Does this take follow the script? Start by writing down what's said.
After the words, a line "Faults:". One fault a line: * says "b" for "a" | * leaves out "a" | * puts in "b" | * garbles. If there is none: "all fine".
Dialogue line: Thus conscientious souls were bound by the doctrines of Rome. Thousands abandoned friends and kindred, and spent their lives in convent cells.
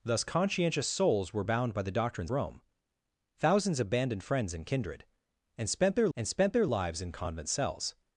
Thus conscientious souls were bound by the doctrines Rome. Thousands abandoned friends and kindred, and spent their and spent their lives in convent cells.
Faults:
* leaves out "of"
* puts in "and spent their"